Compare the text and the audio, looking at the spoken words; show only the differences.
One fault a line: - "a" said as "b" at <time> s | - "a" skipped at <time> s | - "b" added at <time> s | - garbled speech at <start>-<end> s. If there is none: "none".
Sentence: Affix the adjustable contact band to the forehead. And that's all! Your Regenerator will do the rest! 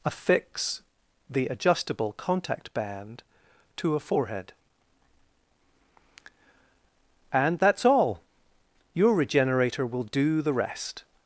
- "the" said as "a" at 4.0 s